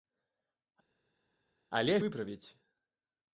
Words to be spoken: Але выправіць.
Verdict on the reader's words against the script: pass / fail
pass